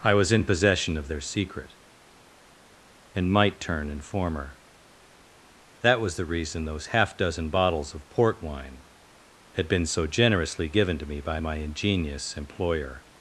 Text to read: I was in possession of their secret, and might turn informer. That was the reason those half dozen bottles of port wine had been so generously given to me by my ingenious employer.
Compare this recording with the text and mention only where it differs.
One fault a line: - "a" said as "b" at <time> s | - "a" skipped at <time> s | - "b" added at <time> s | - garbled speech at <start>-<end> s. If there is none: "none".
none